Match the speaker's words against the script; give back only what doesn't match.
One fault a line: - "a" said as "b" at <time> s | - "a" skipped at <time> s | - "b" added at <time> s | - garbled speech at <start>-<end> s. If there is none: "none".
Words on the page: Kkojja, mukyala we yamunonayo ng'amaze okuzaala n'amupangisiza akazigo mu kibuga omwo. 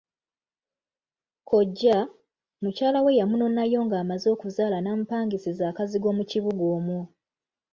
none